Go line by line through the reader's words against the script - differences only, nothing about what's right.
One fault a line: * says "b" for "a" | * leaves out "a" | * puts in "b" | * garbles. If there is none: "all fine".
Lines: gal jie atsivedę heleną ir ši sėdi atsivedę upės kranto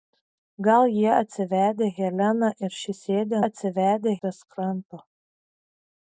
all fine